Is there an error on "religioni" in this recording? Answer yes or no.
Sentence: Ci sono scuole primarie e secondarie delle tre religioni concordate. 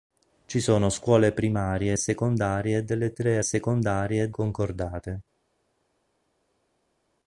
yes